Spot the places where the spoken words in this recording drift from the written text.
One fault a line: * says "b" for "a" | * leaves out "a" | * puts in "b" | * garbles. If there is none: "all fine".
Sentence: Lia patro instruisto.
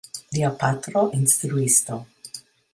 all fine